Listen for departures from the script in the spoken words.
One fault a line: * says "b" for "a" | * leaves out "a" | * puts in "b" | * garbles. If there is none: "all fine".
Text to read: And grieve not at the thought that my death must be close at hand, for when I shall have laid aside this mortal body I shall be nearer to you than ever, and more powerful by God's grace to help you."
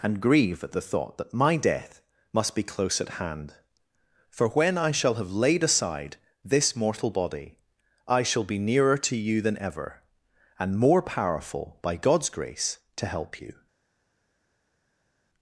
* leaves out "not"